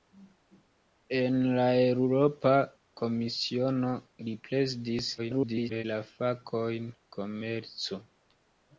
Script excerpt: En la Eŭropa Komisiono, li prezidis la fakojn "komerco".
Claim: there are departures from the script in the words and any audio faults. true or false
true